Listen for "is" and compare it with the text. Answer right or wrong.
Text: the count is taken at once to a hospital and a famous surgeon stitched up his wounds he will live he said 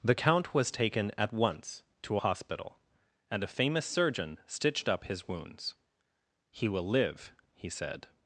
wrong